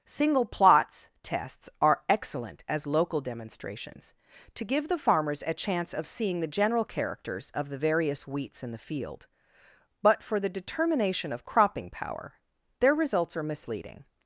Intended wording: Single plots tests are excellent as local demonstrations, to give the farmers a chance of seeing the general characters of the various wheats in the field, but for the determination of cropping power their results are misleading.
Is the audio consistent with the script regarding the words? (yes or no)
yes